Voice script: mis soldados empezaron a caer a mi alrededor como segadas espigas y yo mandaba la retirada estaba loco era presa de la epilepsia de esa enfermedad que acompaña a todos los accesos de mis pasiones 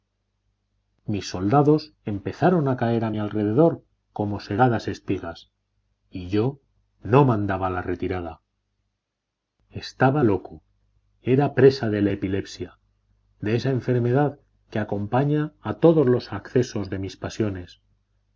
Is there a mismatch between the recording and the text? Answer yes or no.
yes